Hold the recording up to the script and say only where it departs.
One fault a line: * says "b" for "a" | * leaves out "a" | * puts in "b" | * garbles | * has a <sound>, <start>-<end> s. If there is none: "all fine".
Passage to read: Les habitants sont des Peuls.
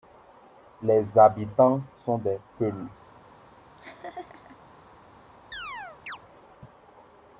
* has a laugh, 3.8-4.6 s
* has a chirp, 5.5-6.2 s